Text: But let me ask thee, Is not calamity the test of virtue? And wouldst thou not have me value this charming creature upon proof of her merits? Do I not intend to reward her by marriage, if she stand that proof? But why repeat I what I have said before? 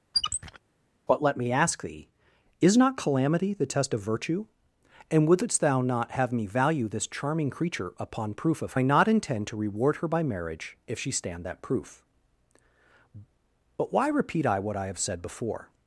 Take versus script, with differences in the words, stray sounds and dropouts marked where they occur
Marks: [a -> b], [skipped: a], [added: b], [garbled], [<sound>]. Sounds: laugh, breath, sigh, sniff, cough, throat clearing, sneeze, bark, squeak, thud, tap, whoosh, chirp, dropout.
[squeak] But let me ask thee, Is not calamity the test of virtue? And wouldst thou not have me value this charming creature upon proof of [skipped: her merits? Do] I not intend to reward her by marriage, if she stand that proof? But why repeat I what I have said before?